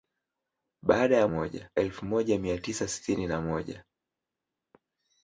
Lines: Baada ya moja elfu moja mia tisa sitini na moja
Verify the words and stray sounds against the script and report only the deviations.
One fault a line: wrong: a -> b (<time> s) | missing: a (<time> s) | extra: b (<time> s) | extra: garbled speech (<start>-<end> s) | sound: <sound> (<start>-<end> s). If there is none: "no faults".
no faults